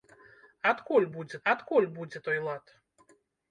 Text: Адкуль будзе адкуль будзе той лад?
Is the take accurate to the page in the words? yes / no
yes